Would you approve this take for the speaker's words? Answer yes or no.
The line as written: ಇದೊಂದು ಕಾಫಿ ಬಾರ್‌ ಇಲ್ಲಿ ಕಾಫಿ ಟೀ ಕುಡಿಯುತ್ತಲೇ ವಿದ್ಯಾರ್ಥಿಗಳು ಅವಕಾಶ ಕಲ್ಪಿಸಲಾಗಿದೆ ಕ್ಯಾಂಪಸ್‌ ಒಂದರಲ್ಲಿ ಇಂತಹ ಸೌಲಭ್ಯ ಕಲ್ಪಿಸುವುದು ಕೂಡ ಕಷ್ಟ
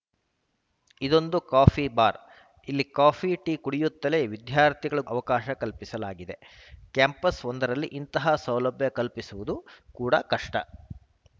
yes